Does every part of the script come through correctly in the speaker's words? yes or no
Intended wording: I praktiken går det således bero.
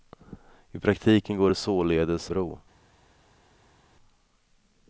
yes